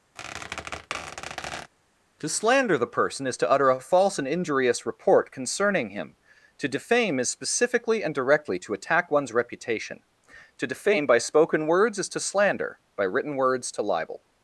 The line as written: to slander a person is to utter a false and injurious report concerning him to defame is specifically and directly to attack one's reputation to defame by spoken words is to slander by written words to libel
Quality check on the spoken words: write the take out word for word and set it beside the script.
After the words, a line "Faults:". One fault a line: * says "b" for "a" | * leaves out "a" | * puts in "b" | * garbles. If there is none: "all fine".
to slander the person is to utter a false and injurious report concerning him to defame is specifically and directly to attack one's reputation to defame by spoken words is to slander by written words to libel
Faults:
* says "the" for "a"